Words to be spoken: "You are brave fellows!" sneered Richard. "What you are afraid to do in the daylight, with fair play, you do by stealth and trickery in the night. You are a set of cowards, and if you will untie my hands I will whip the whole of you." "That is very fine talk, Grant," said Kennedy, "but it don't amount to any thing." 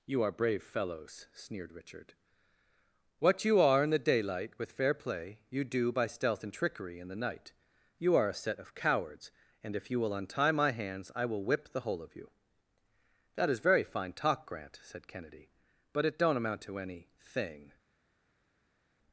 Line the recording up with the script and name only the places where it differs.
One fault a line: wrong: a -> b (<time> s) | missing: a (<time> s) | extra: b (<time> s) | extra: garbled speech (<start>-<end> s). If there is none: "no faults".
missing: afraid to do (3.8 s)